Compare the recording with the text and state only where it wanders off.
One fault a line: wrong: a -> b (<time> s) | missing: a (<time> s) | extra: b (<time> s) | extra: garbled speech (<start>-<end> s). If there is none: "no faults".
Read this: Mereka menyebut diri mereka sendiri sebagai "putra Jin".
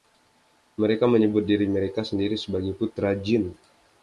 no faults